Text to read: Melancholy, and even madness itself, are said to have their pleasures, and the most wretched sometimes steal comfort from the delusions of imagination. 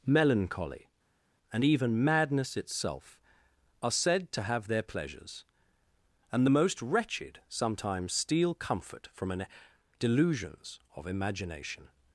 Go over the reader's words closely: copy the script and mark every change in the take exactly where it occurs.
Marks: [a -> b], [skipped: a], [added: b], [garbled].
Melancholy, and even madness itself, are said to have their pleasures, and the most wretched sometimes steal comfort from [the -> an] delusions of imagination.